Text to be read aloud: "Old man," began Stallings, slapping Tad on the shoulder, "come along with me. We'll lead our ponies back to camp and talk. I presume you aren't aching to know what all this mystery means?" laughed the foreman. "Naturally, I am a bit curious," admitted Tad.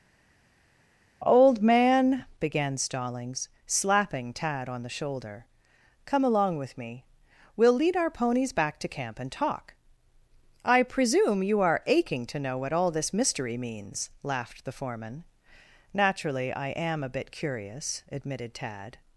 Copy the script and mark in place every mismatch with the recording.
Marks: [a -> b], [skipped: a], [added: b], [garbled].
"Old man," began Stallings, slapping Tad on the shoulder, "come along with me. We'll lead our ponies back to camp and talk. I presume you [aren't -> are] aching to know what all this mystery means?" laughed the foreman. "Naturally, I am a bit curious," admitted Tad.